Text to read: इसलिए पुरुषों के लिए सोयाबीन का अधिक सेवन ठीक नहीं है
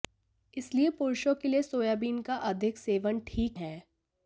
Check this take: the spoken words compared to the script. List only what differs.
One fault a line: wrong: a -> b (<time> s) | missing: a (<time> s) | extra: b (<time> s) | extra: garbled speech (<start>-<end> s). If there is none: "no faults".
missing: नहीं (3.6 s)